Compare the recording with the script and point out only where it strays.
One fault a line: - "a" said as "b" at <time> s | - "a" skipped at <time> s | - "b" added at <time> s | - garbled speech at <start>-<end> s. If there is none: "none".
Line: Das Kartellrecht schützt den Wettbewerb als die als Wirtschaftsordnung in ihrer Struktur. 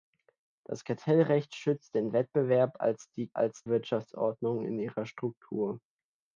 none